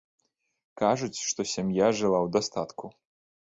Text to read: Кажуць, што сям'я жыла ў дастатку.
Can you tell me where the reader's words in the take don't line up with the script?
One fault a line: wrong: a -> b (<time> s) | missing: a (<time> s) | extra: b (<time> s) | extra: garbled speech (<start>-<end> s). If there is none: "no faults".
no faults